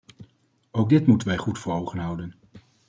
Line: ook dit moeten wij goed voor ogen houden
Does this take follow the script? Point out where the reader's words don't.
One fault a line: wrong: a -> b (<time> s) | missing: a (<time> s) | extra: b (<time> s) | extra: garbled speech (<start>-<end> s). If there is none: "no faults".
no faults